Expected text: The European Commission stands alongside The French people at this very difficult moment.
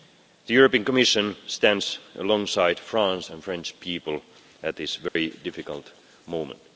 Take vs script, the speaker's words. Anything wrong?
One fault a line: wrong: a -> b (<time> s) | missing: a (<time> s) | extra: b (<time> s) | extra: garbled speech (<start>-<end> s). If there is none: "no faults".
extra: France and (2.8 s)